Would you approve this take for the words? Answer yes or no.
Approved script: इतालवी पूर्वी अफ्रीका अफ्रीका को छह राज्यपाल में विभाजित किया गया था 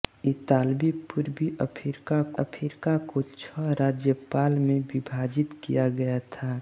yes